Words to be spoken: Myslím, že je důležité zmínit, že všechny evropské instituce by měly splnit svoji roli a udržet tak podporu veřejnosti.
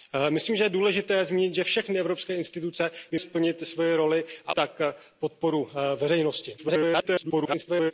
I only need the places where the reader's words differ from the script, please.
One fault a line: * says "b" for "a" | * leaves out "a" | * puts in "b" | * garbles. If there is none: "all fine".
* leaves out "měly"
* leaves out "udržet"
* garbles